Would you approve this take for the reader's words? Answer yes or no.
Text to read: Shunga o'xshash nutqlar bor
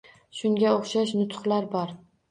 yes